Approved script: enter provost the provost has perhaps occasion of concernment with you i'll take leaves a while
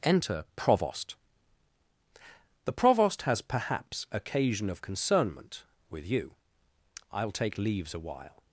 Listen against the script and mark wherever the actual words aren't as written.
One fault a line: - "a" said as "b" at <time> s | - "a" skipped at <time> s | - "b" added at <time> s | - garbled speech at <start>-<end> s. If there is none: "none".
none